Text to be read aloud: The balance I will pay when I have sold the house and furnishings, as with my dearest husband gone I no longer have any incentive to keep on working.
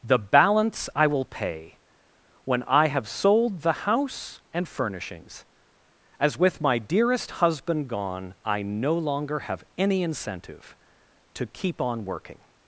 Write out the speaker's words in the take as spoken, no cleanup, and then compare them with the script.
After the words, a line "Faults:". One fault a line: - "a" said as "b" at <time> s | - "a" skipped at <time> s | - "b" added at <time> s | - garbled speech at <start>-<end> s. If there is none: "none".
The balance I will pay when I have sold the house and furnishings, as with my dearest husband gone I no longer have any incentive to keep on working.
Faults:
none